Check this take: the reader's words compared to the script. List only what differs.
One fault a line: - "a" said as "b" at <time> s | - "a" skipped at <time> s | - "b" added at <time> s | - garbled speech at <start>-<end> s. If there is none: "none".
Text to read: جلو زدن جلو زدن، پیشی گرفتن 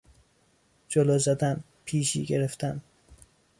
- "جلو زدن" skipped at 1.6 s